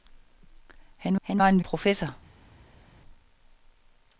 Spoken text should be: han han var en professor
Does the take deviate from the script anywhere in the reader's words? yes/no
no